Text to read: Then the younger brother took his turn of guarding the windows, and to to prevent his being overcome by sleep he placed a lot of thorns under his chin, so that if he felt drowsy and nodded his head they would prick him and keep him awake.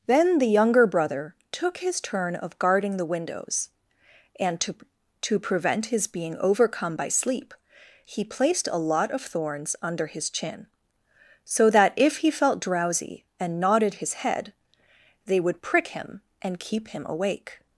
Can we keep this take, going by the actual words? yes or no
yes